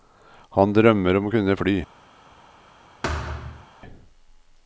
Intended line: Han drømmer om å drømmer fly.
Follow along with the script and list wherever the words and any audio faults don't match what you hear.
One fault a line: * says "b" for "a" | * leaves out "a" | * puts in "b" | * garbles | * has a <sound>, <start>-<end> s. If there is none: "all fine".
* says "kunne" for "drømmer"
* has a thud, 3.0-3.7 s